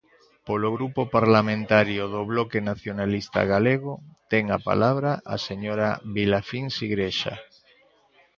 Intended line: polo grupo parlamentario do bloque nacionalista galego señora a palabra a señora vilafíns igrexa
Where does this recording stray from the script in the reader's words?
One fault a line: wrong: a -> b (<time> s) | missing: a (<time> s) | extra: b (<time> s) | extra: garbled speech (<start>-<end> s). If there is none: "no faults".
wrong: señora -> ten (4.3 s)